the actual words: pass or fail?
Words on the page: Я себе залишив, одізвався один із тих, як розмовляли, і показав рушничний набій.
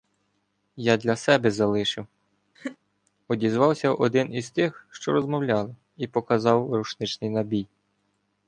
fail